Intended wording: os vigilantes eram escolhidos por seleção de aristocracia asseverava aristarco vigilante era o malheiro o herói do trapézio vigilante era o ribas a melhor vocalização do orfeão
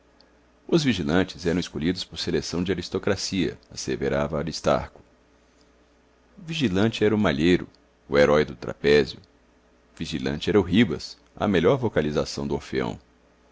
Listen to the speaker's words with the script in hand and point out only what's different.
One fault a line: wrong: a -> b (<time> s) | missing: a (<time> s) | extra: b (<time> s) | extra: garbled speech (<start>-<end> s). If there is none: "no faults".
no faults